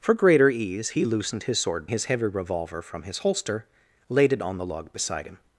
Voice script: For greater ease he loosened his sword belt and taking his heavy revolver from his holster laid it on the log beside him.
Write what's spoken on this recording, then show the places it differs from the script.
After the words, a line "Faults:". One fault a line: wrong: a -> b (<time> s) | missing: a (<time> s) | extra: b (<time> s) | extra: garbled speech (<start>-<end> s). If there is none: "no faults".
For greater ease he loosened his sword his heavy revolver from his holster laid it on the log beside him.
Faults:
missing: belt and taking (1.9 s)